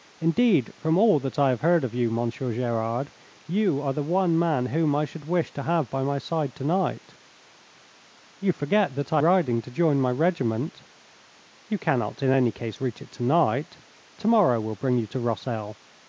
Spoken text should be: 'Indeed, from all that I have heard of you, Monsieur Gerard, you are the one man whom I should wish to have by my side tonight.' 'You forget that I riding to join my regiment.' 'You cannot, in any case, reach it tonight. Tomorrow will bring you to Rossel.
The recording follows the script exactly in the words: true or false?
true